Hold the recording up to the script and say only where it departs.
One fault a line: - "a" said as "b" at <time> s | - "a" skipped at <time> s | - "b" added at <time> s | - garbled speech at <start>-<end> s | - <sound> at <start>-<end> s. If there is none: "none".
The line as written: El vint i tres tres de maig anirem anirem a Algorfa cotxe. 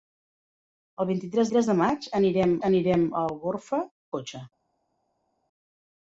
none